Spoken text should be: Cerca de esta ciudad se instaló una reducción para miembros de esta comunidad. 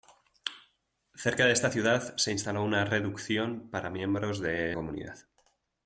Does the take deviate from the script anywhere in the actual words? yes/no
yes